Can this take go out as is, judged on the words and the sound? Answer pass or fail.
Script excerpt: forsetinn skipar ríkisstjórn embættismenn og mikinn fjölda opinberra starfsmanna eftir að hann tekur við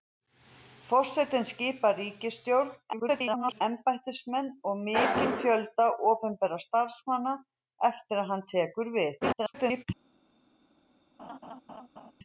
fail